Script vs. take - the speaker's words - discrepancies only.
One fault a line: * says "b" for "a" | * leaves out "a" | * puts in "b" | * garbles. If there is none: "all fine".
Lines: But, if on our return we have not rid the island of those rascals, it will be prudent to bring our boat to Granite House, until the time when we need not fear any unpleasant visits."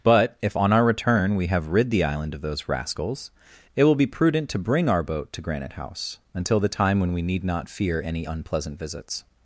* leaves out "not"